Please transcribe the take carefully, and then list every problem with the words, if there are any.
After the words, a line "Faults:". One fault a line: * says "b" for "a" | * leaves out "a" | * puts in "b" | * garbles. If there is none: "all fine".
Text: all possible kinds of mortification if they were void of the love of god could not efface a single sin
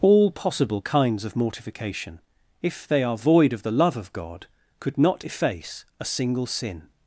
all possible kinds of mortification if they are void of the love of god could not efface a single sin
Faults:
* says "are" for "were"